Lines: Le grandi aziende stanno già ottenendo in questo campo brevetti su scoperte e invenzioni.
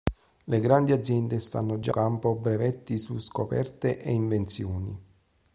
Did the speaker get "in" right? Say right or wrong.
wrong